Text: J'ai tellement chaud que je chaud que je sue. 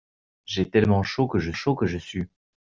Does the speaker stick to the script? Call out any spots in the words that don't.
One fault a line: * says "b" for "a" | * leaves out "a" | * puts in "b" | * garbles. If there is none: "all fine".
all fine